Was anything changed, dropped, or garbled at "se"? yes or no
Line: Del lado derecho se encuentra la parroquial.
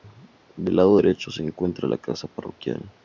no